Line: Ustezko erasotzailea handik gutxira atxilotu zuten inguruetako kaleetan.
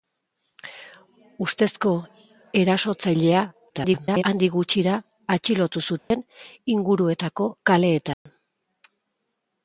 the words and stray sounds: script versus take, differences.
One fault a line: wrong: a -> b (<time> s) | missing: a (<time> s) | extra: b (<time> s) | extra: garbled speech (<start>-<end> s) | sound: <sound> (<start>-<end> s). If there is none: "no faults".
extra: garbled speech (3.7-4.2 s)
sound: dropout (6.0-6.1 s)
sound: dropout (8.1-8.3 s)